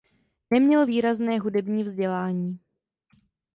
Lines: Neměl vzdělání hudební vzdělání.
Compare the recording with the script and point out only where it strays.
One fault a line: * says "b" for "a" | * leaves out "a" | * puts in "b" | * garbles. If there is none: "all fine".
* says "výrazné" for "vzdělání"